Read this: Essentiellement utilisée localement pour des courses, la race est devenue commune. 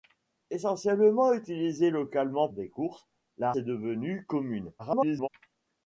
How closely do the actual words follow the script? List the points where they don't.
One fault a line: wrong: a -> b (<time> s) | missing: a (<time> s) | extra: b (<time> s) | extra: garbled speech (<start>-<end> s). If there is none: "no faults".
missing: pour (2.5 s)
missing: race (3.5 s)
extra: garbled speech (4.8-5.3 s)